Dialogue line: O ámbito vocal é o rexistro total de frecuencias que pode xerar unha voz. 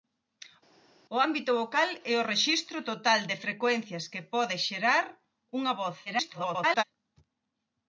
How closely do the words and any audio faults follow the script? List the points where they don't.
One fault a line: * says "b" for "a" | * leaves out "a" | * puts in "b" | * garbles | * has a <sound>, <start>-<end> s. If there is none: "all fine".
* garbles